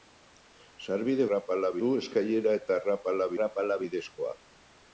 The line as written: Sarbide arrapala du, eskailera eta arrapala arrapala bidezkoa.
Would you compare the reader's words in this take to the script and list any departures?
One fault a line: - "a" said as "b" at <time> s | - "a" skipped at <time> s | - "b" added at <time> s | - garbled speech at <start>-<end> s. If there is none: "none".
none